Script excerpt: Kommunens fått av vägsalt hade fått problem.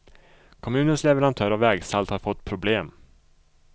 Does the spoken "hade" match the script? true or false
false